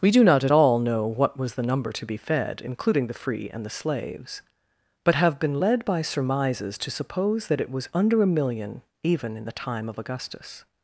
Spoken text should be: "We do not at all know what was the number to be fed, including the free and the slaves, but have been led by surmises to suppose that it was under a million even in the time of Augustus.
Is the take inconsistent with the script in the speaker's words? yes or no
no